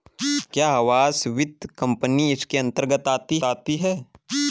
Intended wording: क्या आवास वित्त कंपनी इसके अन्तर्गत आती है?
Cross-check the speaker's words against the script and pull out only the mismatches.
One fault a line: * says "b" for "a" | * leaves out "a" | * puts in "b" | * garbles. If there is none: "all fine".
* puts in "आती"